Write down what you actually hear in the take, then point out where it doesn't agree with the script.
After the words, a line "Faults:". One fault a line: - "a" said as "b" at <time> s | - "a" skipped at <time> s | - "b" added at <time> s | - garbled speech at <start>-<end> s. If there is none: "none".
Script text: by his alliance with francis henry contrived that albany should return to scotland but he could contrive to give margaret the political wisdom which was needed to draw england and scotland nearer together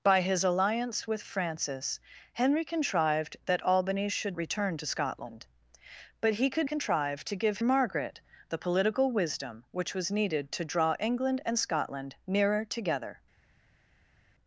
by his alliance with francis henry contrived that albany should return to scotland but he could contrive to give margaret the political wisdom which was needed to draw england and scotland nearer together
Faults:
none